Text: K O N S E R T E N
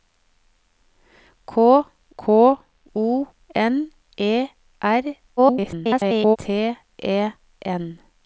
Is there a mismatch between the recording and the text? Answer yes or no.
yes